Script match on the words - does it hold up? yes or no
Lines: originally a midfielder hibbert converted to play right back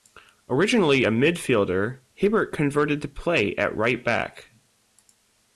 no